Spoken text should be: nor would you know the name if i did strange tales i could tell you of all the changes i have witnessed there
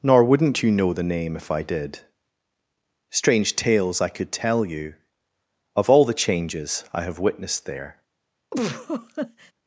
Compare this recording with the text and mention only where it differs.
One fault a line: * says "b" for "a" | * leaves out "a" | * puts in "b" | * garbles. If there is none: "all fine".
* says "wouldn't" for "would"